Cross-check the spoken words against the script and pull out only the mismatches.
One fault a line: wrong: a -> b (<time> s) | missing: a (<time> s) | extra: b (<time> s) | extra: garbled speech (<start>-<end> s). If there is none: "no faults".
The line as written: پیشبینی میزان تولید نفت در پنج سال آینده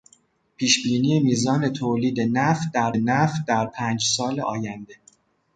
extra: نفت در (2.9 s)